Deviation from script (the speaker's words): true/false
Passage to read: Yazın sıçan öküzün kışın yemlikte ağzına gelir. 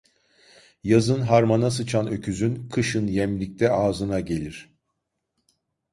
true